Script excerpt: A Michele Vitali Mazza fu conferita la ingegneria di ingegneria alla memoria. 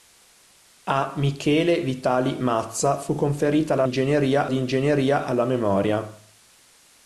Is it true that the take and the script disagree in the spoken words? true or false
false